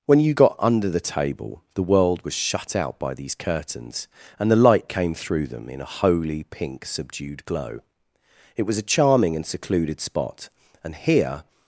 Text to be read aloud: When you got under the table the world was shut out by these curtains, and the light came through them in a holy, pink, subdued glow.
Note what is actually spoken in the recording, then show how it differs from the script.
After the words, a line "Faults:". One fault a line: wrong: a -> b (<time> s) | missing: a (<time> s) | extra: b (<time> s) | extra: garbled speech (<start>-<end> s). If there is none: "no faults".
When you got under the table the world was shut out by these curtains, and the light came through them in a holy, pink, subdued glow. It was a charming and secluded spot, and here
Faults:
extra: It was a charming and secluded spot and here (8.5 s)